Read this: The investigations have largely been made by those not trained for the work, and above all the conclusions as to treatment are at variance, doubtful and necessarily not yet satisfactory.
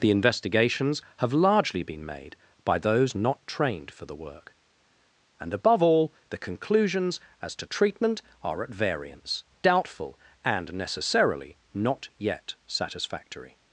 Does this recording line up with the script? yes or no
yes